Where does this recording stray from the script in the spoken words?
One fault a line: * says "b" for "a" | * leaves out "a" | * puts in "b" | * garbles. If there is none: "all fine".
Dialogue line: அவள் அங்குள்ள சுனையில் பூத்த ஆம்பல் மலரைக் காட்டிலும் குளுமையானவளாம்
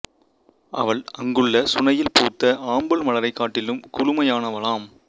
all fine